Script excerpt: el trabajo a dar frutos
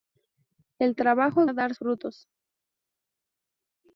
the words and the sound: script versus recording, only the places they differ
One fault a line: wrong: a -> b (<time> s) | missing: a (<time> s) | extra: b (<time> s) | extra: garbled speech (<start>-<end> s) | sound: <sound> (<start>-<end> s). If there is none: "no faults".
no faults